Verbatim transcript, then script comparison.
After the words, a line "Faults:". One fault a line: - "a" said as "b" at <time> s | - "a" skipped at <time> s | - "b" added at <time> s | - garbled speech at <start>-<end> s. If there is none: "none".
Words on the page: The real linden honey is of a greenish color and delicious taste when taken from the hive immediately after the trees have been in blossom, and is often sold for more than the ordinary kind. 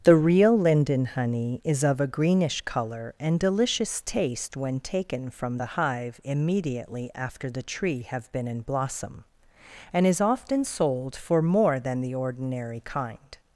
The real linden honey is of a greenish color and delicious taste when taken from the hive immediately after the tree have been in blossom, and is often sold for more than the ordinary kind.
Faults:
- "trees" said as "tree" at 7.6 s